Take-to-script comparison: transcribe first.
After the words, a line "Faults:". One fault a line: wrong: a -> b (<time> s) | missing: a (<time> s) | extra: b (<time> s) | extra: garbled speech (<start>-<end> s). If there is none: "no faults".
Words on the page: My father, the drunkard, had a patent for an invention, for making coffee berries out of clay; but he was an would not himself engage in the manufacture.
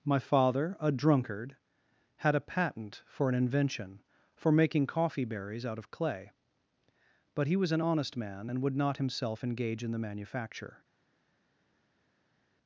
My father, a drunkard, had a patent for an invention, for making coffee berries out of clay; but he was an honest man and would not himself engage in the manufacture.
Faults:
wrong: the -> a (0.8 s)
extra: honest man and (7.8 s)